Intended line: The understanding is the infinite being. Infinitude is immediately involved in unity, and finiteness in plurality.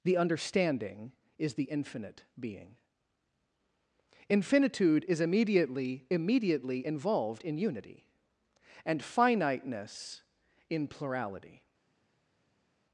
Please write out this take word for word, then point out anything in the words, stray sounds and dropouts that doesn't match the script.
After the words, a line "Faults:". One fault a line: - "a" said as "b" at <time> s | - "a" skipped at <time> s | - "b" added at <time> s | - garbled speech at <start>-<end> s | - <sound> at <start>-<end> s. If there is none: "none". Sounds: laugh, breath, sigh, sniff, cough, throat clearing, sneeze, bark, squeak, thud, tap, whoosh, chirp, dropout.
The understanding is the infinite being. Infinitude is immediately immediately involved in unity, and finiteness in plurality.
Faults:
- "immediately" added at 6.1 s